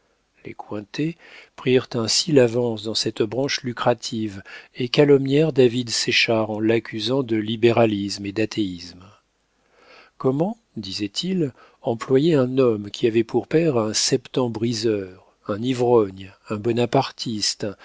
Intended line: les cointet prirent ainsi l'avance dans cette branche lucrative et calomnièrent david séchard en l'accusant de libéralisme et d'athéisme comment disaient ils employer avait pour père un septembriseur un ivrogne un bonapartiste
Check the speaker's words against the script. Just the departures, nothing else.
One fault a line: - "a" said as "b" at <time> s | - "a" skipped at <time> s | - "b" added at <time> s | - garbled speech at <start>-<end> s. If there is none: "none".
- "un homme qui" added at 12.3 s